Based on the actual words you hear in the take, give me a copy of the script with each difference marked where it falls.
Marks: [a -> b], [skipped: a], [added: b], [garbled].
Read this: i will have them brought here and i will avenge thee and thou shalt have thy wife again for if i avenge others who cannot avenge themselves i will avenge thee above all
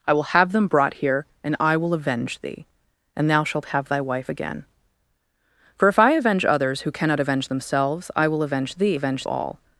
i will have them brought here and i will avenge thee and thou shalt have thy wife again for if i avenge others who cannot avenge themselves i will avenge thee [above -> avenge] all